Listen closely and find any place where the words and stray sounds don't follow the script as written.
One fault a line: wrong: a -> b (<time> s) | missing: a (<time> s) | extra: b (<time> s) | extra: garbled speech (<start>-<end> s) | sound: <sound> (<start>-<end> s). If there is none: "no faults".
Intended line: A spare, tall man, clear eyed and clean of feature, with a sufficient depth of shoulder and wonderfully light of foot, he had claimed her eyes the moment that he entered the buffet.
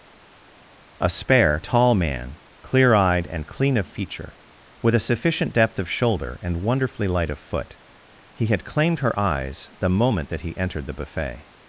no faults